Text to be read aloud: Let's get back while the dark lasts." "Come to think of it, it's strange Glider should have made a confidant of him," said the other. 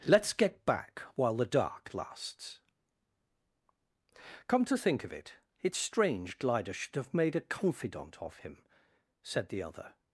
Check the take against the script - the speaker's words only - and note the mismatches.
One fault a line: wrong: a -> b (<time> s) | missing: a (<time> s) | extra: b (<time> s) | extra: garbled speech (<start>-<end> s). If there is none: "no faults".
no faults